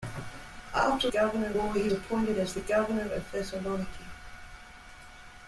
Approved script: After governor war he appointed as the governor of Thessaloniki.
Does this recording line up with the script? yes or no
yes